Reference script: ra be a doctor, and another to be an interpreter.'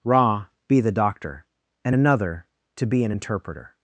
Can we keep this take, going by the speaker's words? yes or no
no